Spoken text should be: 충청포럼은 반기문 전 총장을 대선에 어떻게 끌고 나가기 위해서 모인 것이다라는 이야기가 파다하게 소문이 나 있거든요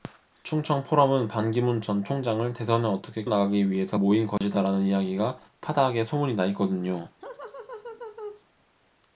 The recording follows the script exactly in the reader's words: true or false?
false